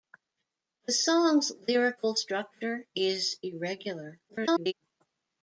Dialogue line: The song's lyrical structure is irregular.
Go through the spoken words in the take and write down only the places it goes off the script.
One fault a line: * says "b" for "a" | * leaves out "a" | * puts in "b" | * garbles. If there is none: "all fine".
* garbles